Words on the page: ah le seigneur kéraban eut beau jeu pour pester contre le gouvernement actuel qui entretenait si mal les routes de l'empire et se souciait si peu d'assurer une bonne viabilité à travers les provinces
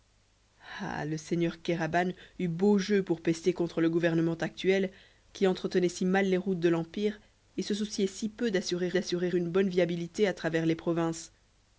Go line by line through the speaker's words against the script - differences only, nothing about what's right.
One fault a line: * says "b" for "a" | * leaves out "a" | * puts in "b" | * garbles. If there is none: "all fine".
* puts in "d'assurer"